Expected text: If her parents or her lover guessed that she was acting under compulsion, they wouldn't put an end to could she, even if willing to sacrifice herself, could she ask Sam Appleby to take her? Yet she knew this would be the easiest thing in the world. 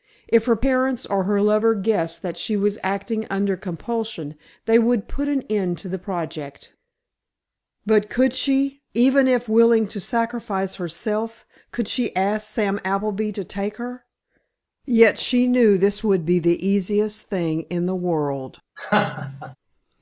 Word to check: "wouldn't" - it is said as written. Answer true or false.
false